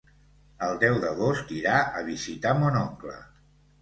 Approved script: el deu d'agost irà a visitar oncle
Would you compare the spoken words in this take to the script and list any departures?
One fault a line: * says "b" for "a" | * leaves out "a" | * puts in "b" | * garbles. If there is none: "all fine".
* puts in "mon"